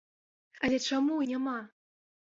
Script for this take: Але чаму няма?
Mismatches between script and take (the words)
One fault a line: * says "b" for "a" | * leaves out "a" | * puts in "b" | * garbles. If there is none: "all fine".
all fine